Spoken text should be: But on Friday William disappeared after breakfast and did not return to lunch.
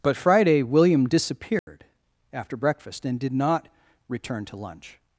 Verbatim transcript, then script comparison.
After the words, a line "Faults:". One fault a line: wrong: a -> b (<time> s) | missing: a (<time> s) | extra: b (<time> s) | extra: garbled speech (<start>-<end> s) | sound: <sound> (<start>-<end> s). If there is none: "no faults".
But Friday William disappeared after breakfast and did not return to lunch.
Faults:
missing: on (0.2 s)
sound: dropout (1.6-1.7 s)